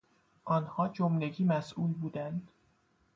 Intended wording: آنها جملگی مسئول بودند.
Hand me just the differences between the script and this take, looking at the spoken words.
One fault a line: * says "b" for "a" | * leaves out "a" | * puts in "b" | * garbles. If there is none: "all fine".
all fine